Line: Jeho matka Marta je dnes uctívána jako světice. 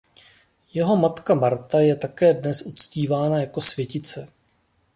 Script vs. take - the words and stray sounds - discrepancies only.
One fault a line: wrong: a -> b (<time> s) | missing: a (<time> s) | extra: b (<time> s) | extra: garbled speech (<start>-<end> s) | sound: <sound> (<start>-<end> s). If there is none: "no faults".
extra: také (1.9 s)